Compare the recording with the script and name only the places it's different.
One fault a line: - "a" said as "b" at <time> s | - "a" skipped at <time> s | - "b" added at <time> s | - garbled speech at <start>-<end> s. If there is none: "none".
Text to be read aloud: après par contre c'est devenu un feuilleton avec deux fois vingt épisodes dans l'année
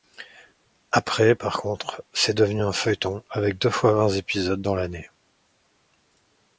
none